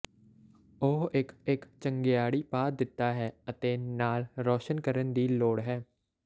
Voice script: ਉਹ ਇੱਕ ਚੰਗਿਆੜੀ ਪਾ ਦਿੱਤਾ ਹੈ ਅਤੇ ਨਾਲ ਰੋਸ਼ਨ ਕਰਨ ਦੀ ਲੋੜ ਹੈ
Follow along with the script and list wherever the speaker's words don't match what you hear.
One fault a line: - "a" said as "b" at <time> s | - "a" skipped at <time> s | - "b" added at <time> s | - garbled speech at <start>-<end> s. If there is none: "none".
- "ਇੱਕ" added at 1.5 s